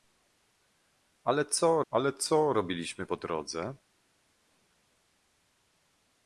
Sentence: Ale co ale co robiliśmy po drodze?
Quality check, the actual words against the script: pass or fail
pass